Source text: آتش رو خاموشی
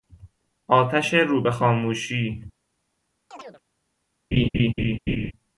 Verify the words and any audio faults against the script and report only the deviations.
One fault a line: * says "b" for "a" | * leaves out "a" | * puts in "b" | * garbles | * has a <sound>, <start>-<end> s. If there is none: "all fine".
* puts in "به"
* has a chirp, 3.3-3.6 s
* has a laugh, 4.3-5.3 s